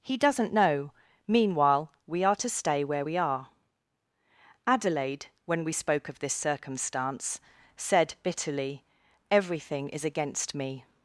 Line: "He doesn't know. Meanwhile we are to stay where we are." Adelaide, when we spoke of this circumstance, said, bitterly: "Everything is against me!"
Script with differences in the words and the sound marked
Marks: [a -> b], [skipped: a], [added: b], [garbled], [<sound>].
"He doesn't know. Meanwhile we are to stay where we are." Adelaide, when we spoke of this circumstance, said, bitterly: "Everything is against me!"